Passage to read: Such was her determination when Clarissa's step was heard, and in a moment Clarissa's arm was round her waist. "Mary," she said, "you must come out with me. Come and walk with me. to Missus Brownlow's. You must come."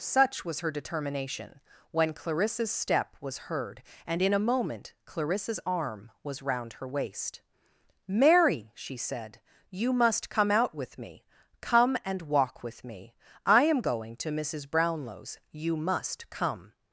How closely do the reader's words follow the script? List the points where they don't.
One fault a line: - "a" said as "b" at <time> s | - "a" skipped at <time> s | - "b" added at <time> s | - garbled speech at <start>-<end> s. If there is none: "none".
- "I am going" added at 13.4 s